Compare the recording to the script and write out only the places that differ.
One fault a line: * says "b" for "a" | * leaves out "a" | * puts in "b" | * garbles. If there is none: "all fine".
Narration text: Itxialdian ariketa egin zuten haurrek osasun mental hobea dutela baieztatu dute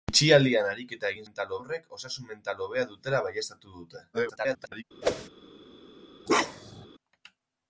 * says "mental" for "zuten"
* garbles